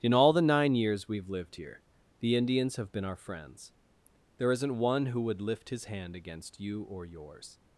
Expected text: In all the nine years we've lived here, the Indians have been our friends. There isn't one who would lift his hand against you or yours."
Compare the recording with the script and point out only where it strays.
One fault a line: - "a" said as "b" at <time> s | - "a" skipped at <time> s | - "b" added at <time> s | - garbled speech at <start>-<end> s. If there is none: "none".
none